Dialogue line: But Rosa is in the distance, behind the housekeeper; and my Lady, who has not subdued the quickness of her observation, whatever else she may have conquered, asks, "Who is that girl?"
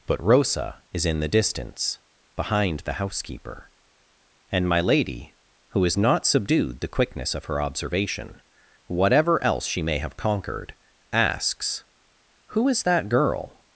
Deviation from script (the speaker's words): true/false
false